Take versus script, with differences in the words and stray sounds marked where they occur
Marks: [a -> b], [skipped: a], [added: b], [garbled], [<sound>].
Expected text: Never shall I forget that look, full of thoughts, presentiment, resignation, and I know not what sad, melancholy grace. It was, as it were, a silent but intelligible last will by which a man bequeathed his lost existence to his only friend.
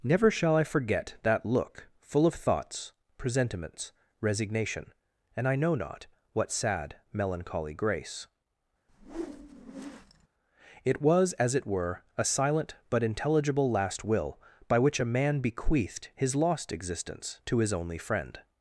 Never shall I forget that look, full of thoughts, [presentiment, -> presentiments] resignation, and I know not what sad, melancholy grace. [whoosh] It was, as it were, a silent but intelligible last will by which a man bequeathed his lost existence to his only friend.